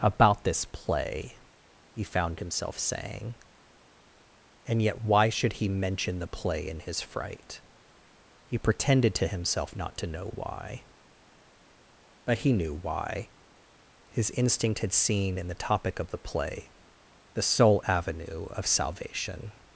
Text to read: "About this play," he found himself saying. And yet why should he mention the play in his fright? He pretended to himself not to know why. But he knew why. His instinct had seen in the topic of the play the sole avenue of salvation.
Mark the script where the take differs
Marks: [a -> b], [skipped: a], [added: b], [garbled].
"About this play," he found himself saying. And yet why should he mention the play in his fright? He pretended to himself not to know why. But he knew why. His instinct had seen in the topic of the play the sole avenue of salvation.